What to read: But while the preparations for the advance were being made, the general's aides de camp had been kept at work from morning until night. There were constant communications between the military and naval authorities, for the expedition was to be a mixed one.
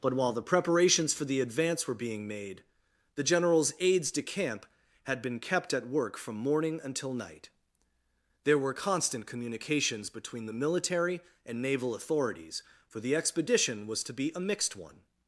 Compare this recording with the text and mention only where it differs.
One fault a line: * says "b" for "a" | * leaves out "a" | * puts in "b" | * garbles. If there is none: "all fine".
all fine